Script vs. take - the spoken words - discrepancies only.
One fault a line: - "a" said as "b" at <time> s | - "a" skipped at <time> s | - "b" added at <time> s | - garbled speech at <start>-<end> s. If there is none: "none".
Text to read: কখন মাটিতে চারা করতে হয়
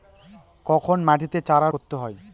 none